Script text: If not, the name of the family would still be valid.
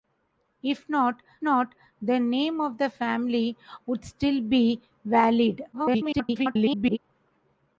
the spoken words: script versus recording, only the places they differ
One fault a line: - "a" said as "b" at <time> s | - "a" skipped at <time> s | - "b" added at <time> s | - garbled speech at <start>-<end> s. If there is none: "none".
- "not" added at 1.4 s
- garbled speech at 5.7-7.0 s